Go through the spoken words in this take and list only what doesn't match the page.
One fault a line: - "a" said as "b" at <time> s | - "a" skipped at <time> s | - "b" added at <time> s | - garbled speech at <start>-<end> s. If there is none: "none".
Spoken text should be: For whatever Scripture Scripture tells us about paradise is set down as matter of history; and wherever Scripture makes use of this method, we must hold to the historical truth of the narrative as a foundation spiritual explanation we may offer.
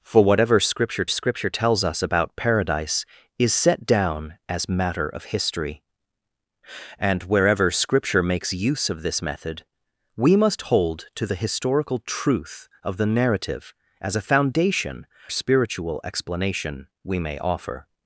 none